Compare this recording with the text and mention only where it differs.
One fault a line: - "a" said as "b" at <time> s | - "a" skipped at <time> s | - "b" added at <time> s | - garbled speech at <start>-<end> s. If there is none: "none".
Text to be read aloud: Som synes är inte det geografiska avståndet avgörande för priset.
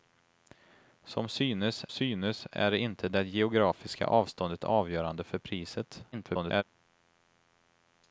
- "synes" added at 1.9 s
- garbled speech at 6.1-6.6 s